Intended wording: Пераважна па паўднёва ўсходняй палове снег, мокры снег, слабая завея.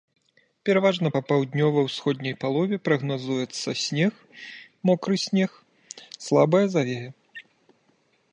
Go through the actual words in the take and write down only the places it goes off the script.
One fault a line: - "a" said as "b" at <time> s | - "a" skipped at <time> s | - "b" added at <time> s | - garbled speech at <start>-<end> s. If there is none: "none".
- "прагназуецца" added at 2.9 s